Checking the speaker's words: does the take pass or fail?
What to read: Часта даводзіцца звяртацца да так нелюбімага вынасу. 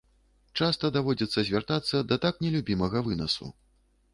pass